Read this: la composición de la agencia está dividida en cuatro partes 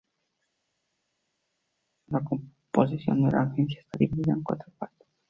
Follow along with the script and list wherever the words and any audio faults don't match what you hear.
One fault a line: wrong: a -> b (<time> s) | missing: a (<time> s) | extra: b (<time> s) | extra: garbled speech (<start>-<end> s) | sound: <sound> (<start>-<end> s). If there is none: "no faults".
no faults